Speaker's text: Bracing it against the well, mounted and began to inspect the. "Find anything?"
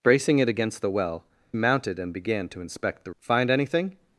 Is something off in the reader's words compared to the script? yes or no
no